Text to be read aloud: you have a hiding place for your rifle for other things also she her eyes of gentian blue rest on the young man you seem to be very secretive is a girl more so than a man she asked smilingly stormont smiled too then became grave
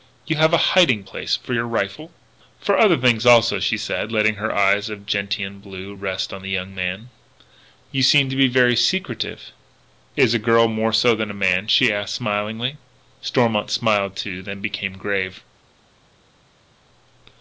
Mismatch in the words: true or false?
true